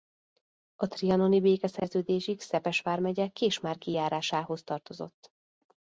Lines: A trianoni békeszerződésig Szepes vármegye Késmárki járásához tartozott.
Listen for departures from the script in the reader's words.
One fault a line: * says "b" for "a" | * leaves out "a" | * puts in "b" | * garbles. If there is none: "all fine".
all fine